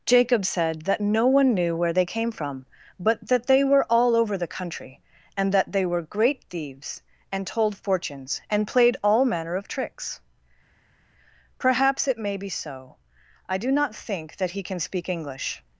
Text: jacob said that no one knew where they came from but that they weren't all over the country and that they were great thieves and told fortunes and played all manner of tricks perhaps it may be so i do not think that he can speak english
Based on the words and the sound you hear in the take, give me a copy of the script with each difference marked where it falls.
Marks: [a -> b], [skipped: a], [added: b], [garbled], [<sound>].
jacob said that no one knew where they came from but that they [weren't -> were] all over the country and that they were great thieves and told fortunes and played all manner of tricks perhaps it may be so i do not think that he can speak english